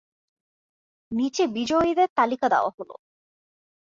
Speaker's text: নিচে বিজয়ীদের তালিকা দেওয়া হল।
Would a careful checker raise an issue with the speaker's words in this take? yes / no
no